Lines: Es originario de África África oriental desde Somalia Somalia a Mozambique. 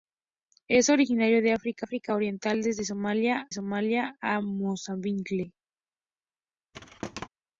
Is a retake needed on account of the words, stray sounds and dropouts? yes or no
yes